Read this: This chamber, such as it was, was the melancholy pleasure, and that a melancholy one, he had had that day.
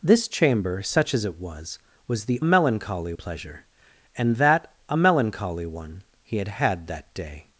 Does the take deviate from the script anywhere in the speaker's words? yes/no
no